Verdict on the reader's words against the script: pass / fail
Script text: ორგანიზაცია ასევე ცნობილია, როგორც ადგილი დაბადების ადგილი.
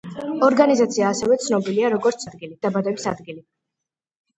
pass